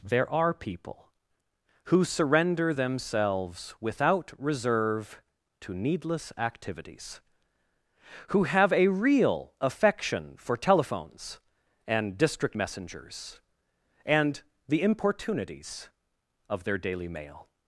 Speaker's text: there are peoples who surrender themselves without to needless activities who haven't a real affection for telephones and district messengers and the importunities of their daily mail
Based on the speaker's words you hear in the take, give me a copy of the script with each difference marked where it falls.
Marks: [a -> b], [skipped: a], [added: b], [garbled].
there are [peoples -> people] who surrender themselves without [added: reserve] to needless activities who [haven't -> have] a real affection for telephones and district messengers and the importunities of their daily mail